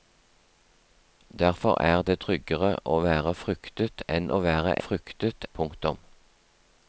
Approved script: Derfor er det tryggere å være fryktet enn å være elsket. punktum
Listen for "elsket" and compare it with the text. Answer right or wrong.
wrong